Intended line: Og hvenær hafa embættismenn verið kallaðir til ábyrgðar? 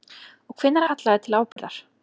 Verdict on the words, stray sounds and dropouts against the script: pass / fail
fail